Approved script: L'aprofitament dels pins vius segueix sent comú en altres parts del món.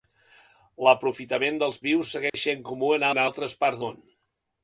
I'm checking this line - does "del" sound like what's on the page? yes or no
no